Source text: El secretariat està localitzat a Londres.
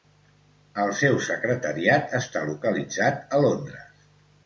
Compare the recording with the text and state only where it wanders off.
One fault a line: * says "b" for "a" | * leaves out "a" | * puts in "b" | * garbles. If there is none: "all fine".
* puts in "seu"